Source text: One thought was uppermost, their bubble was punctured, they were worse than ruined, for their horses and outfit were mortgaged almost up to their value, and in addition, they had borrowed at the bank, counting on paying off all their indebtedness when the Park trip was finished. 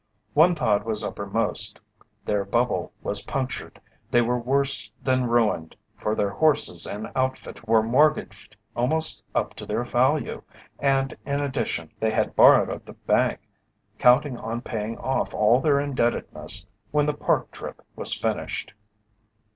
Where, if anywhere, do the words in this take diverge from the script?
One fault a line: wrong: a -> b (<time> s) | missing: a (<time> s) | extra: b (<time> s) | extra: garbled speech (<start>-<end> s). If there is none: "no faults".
no faults